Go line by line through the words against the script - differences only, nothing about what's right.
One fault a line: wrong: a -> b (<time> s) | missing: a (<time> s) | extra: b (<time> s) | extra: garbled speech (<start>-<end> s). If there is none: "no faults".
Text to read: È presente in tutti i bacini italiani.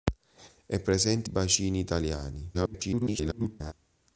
missing: in tutti (1.3 s)
extra: garbled speech (2.5-3.7 s)